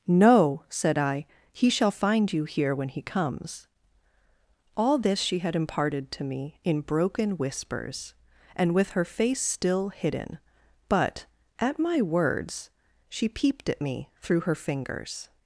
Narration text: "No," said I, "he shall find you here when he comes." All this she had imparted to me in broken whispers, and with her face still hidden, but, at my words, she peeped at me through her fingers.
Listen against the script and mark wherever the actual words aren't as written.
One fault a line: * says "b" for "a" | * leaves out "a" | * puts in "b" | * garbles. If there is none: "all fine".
all fine